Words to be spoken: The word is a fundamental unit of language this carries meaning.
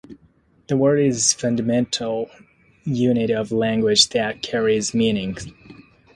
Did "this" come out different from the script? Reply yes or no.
yes